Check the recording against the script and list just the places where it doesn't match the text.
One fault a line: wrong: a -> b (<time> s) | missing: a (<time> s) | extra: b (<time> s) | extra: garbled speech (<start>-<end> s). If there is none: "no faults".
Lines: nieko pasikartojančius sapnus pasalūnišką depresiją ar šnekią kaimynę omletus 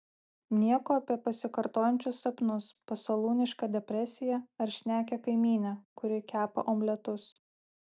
extra: apie (1.0 s)
extra: kuri kepa (6.0 s)